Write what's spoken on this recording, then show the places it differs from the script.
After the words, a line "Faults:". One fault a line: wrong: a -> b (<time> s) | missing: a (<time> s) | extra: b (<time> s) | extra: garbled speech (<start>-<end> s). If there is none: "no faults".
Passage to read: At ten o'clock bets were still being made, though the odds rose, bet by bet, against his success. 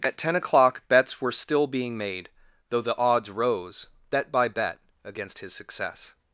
At ten o'clock bets were still being made, though the odds rose, bet by bet, against his success.
Faults:
no faults